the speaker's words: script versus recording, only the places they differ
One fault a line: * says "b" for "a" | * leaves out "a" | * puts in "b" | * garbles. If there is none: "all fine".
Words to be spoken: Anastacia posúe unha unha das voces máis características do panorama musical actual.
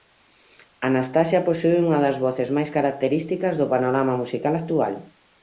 * leaves out "unha"